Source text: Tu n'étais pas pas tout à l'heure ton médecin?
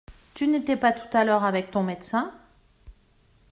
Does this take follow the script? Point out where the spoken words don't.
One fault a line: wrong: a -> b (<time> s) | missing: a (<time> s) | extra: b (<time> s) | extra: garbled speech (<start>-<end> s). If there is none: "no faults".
missing: pas (0.9 s)
extra: avec (1.4 s)